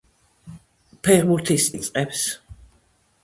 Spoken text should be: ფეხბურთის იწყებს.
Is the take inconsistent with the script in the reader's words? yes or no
no